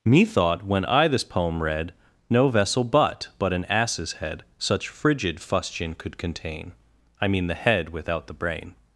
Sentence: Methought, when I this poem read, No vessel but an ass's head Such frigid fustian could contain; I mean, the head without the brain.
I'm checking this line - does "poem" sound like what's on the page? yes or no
yes